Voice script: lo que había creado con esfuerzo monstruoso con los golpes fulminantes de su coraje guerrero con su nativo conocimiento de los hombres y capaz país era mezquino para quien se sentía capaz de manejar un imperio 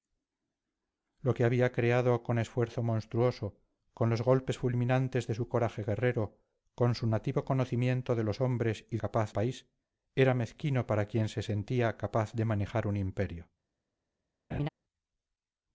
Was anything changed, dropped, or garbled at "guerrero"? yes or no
no